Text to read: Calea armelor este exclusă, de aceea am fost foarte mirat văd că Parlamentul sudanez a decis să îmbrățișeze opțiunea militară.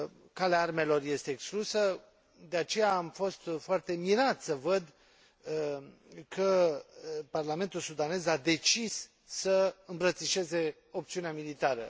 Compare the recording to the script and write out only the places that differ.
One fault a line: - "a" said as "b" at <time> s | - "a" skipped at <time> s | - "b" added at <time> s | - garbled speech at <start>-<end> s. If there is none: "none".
- "să" added at 4.4 s